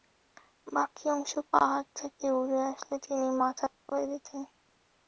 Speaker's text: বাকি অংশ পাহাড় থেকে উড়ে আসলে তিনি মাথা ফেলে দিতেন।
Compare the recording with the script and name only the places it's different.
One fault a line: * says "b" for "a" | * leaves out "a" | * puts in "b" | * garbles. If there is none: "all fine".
all fine